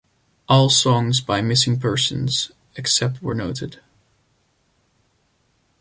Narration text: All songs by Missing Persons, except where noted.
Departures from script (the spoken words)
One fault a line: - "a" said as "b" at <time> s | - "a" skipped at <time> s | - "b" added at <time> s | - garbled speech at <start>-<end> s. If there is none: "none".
none